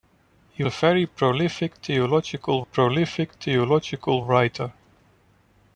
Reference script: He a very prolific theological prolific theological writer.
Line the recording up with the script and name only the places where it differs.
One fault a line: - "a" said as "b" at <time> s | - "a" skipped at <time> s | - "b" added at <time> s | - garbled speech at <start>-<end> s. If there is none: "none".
none